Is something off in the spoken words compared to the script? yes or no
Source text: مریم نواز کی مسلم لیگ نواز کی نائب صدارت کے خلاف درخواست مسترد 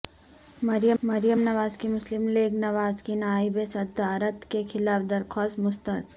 yes